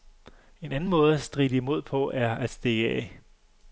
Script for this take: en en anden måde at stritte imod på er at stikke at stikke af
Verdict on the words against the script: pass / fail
fail